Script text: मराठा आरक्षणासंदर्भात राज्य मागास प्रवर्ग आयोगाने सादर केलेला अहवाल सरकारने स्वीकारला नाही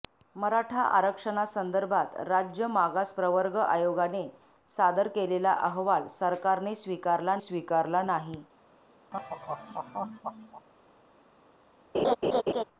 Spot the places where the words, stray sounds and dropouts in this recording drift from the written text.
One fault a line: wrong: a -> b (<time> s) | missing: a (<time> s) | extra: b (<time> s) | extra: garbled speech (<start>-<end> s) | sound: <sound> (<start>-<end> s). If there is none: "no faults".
extra: स्वीकारला (7.4 s)
sound: laugh (9.1-10.7 s)
sound: laugh (11.9-12.6 s)